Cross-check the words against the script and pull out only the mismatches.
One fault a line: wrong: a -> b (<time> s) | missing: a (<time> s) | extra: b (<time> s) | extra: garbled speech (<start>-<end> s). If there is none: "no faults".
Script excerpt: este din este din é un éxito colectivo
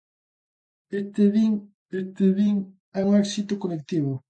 no faults